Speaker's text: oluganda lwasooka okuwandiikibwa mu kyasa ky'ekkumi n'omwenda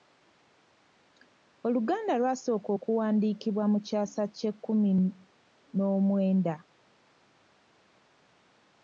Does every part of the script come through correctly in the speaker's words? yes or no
yes